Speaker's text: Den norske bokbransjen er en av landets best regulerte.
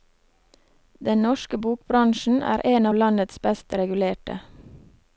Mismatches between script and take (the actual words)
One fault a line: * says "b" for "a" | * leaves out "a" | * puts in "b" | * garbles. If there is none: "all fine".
all fine